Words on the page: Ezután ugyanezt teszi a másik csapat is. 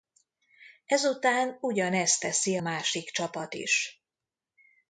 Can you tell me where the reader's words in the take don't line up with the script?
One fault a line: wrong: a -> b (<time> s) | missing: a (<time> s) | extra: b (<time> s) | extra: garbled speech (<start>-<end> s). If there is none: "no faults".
missing: a (2.6 s)